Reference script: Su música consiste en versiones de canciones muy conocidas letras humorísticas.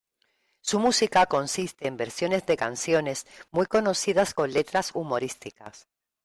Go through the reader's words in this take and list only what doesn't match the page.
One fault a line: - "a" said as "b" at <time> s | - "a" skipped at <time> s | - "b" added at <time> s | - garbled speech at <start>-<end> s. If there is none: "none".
- "con" added at 4.3 s